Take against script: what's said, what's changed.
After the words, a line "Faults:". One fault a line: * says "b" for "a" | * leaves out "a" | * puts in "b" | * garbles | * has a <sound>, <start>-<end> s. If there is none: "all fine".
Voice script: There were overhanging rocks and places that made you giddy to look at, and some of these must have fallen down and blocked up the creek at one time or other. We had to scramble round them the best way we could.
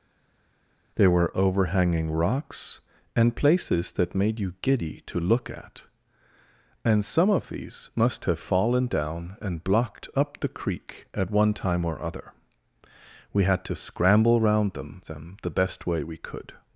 There were overhanging rocks and places that made you giddy to look at, and some of these must have fallen down and blocked up the creek at one time or other. We had to scramble round them them the best way we could.
Faults:
* puts in "them"